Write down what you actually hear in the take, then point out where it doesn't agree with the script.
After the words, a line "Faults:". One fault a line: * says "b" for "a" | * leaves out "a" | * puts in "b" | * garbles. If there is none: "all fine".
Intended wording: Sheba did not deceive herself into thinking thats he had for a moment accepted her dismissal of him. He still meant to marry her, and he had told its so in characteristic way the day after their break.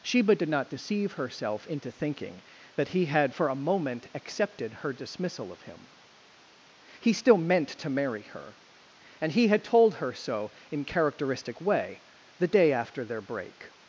Sheba did not deceive herself into thinking that he had for a moment accepted her dismissal of him. He still meant to marry her, and he had told her so in characteristic way the day after their break.
Faults:
* says "that" for "thats"
* says "her" for "its"